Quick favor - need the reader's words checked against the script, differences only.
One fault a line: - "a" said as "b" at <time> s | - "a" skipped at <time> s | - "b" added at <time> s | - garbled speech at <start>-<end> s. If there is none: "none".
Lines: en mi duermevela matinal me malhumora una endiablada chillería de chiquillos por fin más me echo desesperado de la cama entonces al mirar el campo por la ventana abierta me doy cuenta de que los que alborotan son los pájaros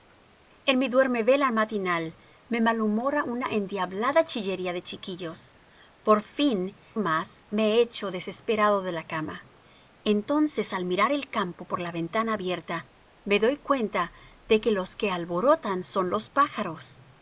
none